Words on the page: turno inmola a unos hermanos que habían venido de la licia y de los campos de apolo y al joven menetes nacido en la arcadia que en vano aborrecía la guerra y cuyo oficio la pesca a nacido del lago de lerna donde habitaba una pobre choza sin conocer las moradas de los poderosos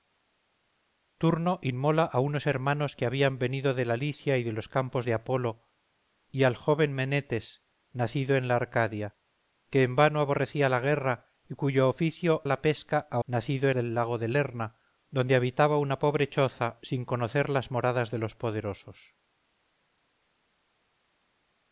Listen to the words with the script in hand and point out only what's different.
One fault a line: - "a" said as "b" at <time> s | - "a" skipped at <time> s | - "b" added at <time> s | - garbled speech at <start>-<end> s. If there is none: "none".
none